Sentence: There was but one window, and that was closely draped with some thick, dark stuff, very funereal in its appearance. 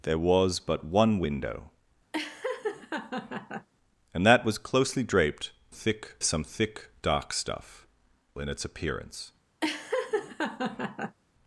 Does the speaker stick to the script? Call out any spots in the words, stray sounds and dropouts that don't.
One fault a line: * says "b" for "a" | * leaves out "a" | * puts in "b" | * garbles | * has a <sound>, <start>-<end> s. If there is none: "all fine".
* has a laugh, 2.1-3.7 s
* says "thick" for "with"
* leaves out "very funereal"
* has a laugh, 9.6-11.2 s